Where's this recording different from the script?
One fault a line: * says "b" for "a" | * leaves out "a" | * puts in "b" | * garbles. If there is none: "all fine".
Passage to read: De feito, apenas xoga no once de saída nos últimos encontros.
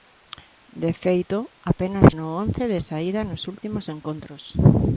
* leaves out "xoga"